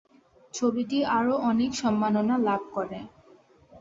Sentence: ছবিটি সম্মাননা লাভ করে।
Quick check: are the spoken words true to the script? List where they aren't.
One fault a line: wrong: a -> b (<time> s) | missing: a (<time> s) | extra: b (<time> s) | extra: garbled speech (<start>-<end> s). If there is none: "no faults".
extra: আরও অনেক (1.2 s)